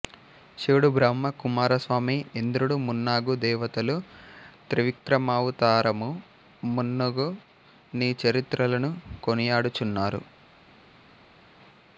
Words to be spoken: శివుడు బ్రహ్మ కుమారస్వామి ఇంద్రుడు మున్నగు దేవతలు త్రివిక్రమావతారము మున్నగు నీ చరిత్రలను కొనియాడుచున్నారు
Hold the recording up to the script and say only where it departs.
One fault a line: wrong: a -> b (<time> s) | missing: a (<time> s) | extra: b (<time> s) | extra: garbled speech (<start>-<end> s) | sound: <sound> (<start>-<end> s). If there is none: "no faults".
no faults